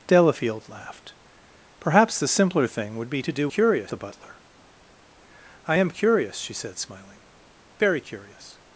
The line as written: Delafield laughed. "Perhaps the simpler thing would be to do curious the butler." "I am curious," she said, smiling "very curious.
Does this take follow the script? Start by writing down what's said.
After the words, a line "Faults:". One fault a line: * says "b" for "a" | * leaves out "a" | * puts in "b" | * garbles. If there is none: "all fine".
Delafield laughed. "Perhaps the simpler thing would be to do curious the butler." "I am curious," she said, smiling "very curious.
Faults:
all fine